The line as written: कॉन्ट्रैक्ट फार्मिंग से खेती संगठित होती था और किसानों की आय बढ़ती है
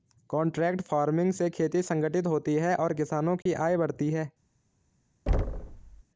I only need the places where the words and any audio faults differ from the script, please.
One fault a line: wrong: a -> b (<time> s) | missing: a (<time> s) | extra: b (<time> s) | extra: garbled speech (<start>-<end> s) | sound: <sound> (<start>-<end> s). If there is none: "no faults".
wrong: था -> है (2.5 s)
sound: dropout (3.4-3.5 s)
sound: thud (5.3-6.0 s)